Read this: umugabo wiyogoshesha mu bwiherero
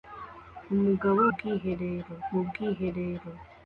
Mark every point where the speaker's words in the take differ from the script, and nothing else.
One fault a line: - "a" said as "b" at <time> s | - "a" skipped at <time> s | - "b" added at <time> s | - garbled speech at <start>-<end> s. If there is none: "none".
- "wiyogoshesha" said as "bwiherero" at 1.3 s